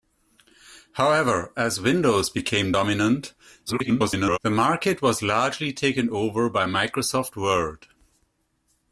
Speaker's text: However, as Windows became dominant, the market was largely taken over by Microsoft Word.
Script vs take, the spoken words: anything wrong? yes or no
yes